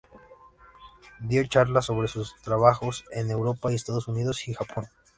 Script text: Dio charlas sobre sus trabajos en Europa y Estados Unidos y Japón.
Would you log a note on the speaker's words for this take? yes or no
no